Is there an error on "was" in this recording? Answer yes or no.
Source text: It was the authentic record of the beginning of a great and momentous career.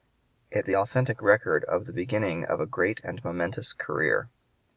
yes